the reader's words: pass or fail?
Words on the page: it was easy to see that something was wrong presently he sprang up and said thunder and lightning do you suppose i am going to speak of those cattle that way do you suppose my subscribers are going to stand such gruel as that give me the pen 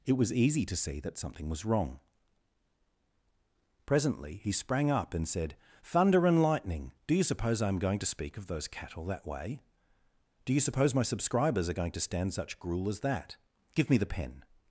pass